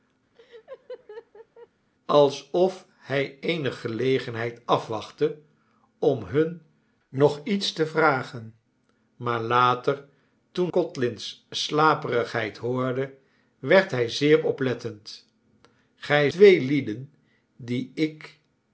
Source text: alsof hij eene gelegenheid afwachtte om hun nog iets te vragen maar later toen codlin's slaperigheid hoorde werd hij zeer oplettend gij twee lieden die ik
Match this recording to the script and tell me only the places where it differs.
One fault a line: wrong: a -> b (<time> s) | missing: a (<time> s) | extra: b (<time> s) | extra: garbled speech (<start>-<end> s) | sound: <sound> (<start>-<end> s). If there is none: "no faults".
sound: laugh (0.3-1.7 s)